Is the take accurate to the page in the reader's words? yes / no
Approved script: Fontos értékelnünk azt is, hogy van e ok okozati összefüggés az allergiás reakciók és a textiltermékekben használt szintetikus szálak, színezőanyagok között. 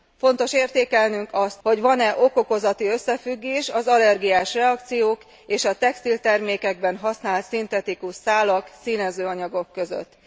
no